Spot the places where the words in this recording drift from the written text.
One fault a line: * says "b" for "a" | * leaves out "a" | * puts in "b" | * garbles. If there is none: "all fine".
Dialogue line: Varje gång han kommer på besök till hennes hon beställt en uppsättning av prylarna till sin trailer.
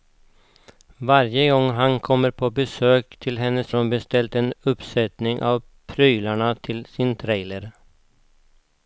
all fine